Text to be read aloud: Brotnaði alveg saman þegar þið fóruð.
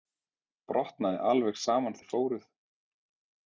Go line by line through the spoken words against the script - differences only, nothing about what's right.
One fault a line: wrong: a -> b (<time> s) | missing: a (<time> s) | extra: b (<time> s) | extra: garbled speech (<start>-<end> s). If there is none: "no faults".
missing: þegar (2.0 s)